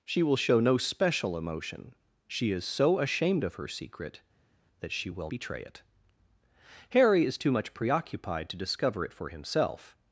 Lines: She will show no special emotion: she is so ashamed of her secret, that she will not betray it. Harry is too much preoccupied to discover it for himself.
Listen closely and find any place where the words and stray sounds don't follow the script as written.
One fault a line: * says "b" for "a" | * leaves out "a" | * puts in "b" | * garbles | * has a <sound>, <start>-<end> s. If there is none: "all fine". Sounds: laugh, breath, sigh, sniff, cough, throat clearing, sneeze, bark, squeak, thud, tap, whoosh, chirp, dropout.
* leaves out "not"